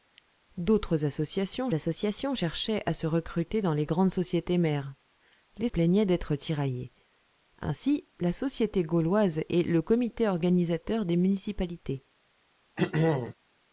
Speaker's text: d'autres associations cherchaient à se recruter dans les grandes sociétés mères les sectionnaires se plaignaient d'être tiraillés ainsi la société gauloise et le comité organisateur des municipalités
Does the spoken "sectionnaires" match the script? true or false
false